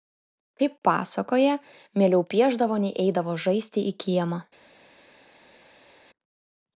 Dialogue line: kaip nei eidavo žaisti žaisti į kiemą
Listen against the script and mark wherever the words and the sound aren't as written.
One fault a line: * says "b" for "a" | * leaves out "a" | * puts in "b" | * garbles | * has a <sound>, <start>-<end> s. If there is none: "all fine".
* puts in "pasakoja mieliau piešdavo"
* leaves out "žaisti"